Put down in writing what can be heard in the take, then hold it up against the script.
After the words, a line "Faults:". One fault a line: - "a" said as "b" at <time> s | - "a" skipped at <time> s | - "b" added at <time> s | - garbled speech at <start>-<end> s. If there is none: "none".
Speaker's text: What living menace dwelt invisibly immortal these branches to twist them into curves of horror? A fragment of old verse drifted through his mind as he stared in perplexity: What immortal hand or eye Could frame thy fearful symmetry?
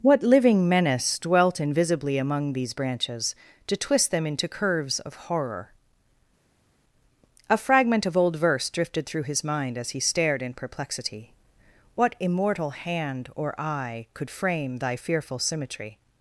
What living menace dwelt invisibly among these branches to twist them into curves of horror? A fragment of old verse drifted through his mind as he stared in perplexity: What immortal hand or eye Could frame thy fearful symmetry?
Faults:
- "immortal" said as "among" at 2.2 s